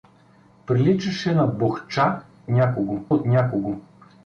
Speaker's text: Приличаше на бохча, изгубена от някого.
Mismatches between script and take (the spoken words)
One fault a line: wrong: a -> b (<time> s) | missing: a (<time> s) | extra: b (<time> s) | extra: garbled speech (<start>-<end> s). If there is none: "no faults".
wrong: изгубена -> някого (2.5 s)